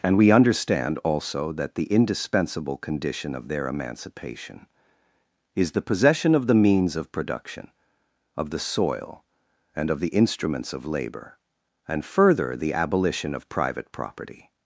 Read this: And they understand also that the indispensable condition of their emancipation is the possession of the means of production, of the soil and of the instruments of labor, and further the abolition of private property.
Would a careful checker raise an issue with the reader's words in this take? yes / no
yes